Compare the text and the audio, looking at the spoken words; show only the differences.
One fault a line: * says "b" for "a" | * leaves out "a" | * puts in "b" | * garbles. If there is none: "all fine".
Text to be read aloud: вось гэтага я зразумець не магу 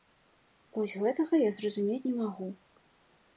all fine